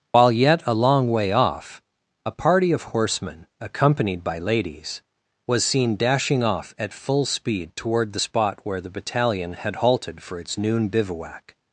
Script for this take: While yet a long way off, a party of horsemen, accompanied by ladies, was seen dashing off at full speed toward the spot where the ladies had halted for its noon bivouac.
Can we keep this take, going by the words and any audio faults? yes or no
no